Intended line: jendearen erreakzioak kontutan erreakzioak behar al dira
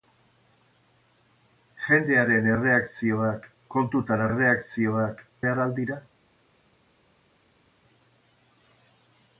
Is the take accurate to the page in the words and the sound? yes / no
yes